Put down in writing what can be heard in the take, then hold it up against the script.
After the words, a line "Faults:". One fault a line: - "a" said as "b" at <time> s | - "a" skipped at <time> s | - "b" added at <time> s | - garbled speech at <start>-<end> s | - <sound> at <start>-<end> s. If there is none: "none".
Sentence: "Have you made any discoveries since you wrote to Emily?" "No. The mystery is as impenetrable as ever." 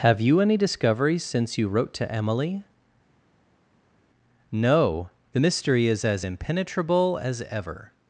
"Have you any discoveries since you wrote to Emily?" "No. The mystery is as impenetrable as ever."
Faults:
- "made" skipped at 0.4 s